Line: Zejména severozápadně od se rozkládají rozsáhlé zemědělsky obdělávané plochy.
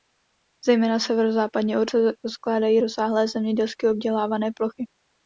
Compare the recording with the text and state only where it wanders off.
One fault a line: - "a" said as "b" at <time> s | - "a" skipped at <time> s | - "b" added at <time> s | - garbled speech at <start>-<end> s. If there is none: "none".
none